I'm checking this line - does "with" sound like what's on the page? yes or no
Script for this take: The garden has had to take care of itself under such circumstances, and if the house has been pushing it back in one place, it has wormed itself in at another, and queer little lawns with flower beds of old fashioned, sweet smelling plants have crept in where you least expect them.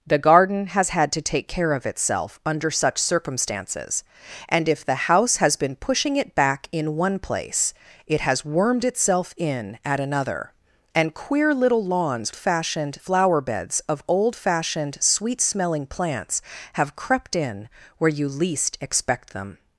no